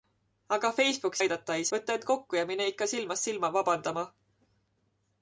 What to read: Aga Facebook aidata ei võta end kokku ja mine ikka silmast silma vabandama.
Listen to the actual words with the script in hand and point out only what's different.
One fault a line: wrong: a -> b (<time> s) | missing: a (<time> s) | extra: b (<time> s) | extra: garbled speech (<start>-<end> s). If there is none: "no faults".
no faults